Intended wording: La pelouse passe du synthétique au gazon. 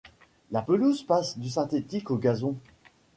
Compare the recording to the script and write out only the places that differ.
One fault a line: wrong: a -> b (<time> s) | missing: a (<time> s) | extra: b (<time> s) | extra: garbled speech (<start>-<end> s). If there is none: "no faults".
no faults